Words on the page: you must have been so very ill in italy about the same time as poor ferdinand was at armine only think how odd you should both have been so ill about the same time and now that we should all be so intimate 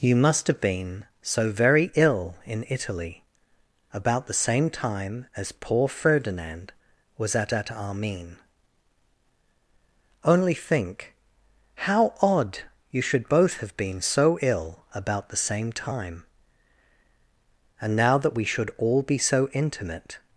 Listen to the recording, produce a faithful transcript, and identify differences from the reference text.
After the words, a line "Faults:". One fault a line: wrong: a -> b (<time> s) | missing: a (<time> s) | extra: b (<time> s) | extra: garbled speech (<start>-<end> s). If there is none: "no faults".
you must have been so very ill in italy about the same time as poor ferdinand was at at armine only think how odd you should both have been so ill about the same time and now that we should all be so intimate
Faults:
extra: at (7.5 s)